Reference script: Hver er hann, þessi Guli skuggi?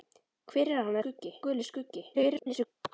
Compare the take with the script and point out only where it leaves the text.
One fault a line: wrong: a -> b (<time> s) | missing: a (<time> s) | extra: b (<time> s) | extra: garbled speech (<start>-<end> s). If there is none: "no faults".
wrong: þessi -> skuggi (1.0 s)
extra: garbled speech (2.1-2.7 s)